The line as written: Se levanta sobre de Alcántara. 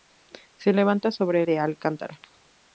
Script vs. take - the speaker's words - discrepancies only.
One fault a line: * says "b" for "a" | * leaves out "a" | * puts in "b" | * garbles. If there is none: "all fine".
all fine